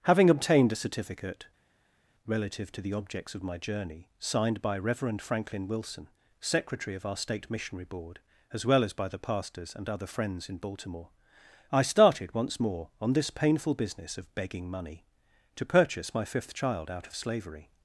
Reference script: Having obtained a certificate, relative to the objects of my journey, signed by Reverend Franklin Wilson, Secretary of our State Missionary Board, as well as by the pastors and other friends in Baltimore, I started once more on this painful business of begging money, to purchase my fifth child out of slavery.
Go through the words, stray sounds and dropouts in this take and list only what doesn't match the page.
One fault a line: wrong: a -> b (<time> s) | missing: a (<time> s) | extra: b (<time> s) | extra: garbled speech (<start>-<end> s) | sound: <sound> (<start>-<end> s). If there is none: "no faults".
no faults